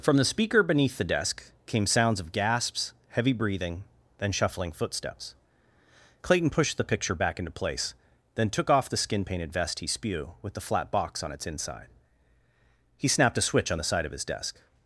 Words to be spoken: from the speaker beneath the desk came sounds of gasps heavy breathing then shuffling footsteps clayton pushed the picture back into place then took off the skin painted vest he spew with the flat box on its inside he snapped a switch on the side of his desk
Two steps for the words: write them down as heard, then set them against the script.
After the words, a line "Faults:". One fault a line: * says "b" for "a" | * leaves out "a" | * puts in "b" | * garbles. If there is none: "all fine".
from the speaker beneath the desk came sounds of gasps heavy breathing then shuffling footsteps clayton pushed the picture back into place then took off the skin painted vest he spew with the flat box on its inside he snapped a switch on the side of his desk
Faults:
all fine